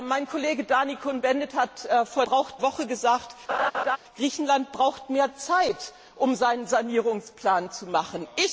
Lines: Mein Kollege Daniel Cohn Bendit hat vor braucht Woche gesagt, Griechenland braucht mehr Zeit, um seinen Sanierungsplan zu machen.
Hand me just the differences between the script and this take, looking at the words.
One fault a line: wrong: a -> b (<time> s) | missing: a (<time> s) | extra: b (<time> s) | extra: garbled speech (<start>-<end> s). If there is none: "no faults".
no faults